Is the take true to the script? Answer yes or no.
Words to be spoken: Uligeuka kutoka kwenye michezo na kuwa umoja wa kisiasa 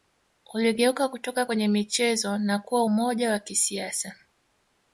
yes